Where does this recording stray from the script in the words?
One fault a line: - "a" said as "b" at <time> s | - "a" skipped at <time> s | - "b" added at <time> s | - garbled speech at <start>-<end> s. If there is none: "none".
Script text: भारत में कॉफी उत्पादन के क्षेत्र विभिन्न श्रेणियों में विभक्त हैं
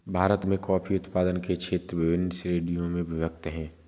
none